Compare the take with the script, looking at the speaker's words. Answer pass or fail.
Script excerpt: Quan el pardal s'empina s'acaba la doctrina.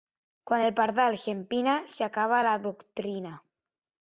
pass